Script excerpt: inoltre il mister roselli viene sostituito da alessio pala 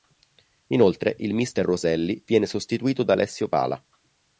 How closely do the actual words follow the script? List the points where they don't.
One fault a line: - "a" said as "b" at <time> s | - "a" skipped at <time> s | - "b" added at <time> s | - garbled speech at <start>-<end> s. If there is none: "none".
none